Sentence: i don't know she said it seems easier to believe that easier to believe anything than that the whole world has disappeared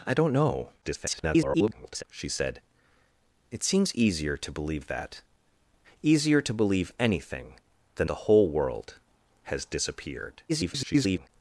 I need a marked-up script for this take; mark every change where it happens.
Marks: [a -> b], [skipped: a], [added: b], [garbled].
i don't know [garbled] she said it seems easier to believe that easier to believe anything than [skipped: that] the whole world has disappeared [garbled]